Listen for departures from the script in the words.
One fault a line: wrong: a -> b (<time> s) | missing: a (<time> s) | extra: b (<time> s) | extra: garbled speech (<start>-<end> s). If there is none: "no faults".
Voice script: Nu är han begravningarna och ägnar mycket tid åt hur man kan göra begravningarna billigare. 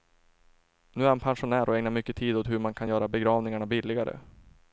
wrong: begravningarna -> pensionär (1.2 s)